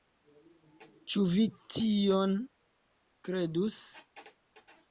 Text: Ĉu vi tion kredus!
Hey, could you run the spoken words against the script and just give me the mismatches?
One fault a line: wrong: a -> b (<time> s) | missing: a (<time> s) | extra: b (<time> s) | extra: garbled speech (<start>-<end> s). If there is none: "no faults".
no faults